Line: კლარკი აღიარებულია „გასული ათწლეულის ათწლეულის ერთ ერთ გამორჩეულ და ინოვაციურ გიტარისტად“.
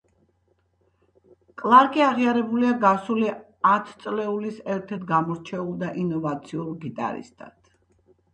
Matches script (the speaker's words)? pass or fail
fail